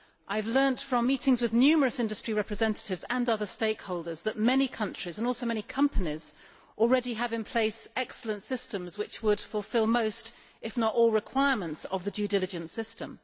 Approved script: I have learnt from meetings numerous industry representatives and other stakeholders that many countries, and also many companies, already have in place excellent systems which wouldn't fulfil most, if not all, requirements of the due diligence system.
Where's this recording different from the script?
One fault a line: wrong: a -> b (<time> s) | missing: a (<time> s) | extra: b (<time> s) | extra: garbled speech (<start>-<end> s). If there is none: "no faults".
extra: with (1.4 s)
wrong: wouldn't -> would (9.2 s)